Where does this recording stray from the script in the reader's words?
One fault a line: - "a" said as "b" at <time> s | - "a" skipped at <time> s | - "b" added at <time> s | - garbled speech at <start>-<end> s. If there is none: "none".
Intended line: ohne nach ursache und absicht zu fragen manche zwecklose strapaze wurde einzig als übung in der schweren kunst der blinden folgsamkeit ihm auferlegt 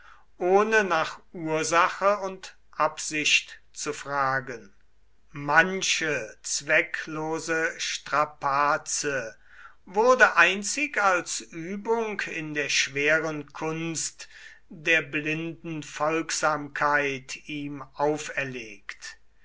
none